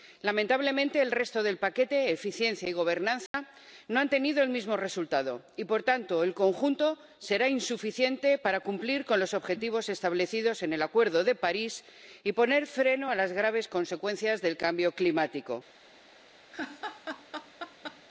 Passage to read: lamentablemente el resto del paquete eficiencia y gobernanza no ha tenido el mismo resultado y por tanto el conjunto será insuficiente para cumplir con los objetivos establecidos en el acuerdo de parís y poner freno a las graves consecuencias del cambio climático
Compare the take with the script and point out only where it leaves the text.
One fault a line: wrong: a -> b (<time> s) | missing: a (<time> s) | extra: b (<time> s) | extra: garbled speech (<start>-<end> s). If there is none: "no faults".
no faults